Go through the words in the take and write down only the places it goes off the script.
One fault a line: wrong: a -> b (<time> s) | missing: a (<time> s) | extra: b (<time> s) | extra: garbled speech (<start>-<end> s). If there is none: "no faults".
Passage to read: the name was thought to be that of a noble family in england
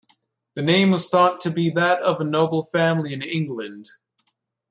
no faults